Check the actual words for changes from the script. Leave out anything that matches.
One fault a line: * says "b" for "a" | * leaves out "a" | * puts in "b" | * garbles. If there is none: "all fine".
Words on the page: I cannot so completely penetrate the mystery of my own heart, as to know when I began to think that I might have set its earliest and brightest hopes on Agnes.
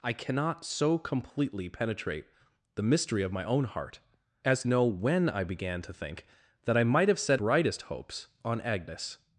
* leaves out "to"
* leaves out "its earliest and"